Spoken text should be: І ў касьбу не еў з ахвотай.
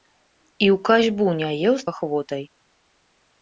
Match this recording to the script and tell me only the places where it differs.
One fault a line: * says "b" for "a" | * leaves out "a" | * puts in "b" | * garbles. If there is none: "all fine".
all fine